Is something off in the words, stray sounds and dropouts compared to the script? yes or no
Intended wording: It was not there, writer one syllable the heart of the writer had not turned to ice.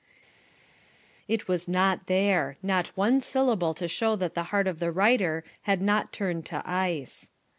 yes